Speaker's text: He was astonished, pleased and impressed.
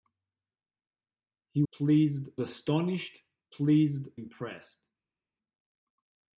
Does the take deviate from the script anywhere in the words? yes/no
yes